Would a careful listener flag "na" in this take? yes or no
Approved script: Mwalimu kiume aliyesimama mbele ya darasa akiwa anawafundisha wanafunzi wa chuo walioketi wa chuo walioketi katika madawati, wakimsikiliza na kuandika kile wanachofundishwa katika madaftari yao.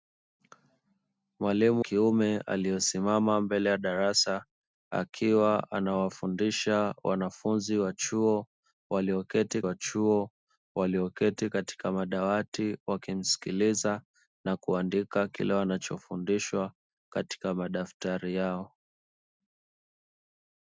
no